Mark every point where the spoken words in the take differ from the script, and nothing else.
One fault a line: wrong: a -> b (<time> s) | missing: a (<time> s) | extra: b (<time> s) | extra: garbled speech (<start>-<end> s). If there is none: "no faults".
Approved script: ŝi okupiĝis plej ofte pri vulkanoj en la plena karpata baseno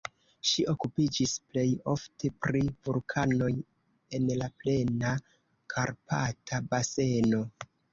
no faults